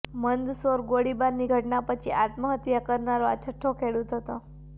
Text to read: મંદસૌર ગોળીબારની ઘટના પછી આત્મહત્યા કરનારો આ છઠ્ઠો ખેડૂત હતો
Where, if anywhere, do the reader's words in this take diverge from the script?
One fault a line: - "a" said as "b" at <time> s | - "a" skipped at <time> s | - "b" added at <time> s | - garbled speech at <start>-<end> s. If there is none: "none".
none